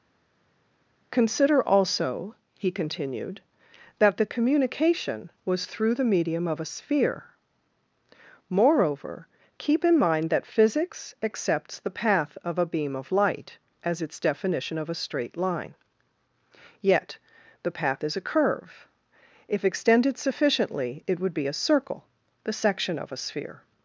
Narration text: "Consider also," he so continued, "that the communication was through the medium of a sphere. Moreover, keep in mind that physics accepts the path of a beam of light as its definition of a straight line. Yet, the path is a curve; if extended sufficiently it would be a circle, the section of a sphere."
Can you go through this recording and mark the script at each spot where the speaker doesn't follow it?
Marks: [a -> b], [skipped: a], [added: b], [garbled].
"Consider also," he [skipped: so] continued, "that the communication was through the medium of a sphere. Moreover, keep in mind that physics accepts the path of a beam of light as its definition of a straight line. Yet, the path is a curve; if extended sufficiently it would be a circle, the section of a sphere."